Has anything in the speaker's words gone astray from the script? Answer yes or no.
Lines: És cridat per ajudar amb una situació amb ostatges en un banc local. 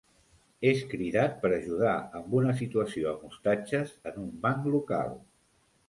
no